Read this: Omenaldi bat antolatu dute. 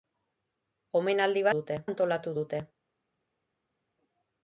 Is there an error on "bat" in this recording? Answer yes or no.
yes